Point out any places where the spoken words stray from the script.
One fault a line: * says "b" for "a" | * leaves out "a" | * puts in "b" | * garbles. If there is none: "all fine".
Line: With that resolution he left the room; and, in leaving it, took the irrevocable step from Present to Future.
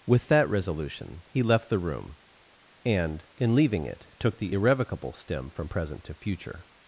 * says "stem" for "step"